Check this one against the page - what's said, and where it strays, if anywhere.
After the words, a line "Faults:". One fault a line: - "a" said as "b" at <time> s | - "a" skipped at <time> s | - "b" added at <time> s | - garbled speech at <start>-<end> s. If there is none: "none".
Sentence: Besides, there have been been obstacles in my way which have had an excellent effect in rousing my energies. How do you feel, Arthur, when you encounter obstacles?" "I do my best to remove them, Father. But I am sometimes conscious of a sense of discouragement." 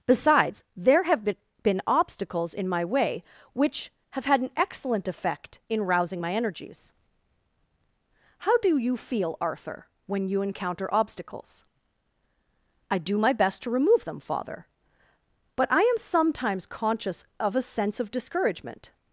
Besides, there have been been obstacles in my way which have had an excellent effect in rousing my energies. How do you feel, Arthur, when you encounter obstacles?" "I do my best to remove them, Father. But I am sometimes conscious of a sense of discouragement."
Faults:
none